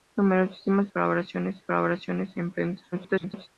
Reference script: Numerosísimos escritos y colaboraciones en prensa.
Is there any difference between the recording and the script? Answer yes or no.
yes